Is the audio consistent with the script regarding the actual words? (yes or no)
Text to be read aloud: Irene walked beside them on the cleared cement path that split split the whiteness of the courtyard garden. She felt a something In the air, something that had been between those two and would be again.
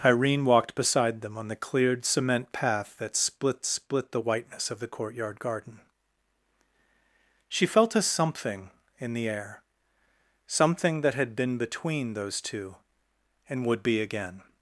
yes